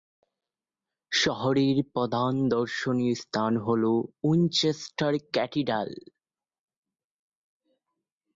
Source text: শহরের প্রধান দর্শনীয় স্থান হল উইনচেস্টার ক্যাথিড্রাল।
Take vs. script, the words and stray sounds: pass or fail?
pass